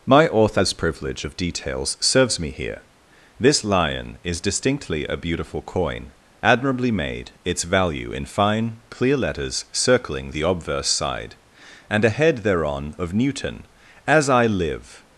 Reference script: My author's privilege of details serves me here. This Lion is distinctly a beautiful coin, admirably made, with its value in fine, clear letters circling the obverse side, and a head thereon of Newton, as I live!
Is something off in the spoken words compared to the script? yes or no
yes